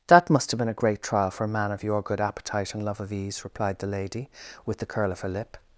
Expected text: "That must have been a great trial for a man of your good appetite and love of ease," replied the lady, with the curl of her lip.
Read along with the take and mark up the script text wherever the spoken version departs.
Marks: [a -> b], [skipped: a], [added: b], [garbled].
"That must have been a great trial for a man of your good appetite and love of ease," replied the lady, with the curl of her lip.